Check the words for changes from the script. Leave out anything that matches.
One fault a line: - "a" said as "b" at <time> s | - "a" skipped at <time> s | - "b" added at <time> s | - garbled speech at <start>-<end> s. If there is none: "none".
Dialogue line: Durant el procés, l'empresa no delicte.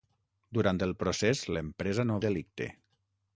none